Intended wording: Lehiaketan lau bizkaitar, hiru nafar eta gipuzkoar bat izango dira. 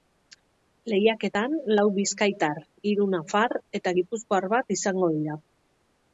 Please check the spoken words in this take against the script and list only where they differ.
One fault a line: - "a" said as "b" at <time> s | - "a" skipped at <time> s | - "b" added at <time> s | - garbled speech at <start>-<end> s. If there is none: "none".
none